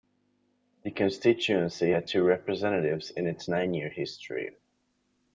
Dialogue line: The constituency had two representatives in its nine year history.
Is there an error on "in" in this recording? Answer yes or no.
no